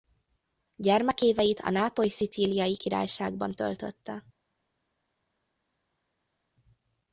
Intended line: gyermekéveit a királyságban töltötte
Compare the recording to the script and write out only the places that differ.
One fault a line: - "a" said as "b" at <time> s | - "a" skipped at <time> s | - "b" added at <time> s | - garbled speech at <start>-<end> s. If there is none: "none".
- "nápoly szicíliai" added at 1.7 s